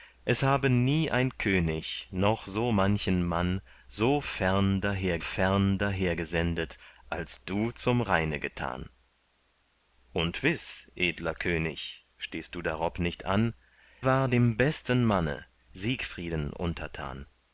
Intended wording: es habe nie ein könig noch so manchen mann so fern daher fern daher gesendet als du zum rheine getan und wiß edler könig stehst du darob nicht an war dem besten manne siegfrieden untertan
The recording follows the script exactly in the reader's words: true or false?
true